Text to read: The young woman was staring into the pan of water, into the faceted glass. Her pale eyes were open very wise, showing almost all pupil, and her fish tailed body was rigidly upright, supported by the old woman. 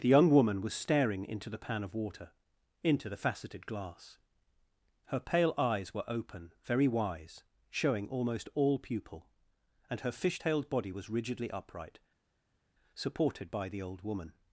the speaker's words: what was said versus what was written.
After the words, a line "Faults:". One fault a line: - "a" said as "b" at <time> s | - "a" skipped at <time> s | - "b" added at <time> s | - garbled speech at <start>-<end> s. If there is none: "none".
The young woman was staring into the pan of water, into the faceted glass. Her pale eyes were open very wise, showing almost all pupil, and her fish tailed body was rigidly upright, supported by the old woman.
Faults:
none